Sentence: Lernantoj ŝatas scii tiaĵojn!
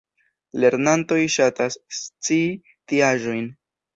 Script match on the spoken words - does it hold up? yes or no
yes